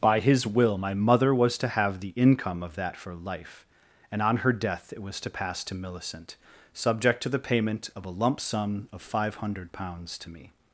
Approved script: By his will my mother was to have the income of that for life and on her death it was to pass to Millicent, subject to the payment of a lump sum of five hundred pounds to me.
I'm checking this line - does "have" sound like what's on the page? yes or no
yes